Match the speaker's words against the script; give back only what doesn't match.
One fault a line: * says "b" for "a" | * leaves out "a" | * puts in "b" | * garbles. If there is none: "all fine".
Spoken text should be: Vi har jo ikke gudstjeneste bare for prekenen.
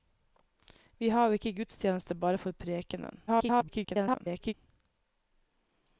* garbles